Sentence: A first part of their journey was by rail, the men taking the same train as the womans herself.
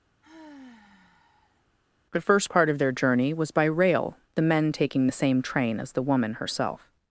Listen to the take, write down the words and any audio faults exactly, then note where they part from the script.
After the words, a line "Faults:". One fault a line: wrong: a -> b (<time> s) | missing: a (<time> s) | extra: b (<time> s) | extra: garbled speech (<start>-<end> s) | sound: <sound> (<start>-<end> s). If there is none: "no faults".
The first part of their journey was by rail, the men taking the same train as the woman herself.
Faults:
sound: sigh (0.2-1.7 s)
wrong: A -> The (2.1 s)
wrong: womans -> woman (6.0 s)